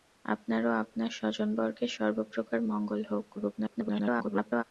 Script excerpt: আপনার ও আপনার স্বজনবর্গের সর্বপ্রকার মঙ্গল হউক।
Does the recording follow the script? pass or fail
fail